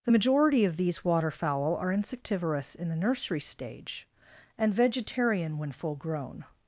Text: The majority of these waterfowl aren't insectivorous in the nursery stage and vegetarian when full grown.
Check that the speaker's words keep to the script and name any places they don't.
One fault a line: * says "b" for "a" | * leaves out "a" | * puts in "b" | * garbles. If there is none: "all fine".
* says "are" for "aren't"